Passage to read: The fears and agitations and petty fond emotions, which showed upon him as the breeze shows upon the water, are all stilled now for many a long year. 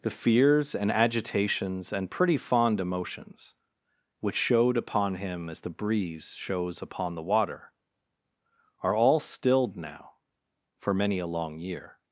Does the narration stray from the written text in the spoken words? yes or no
yes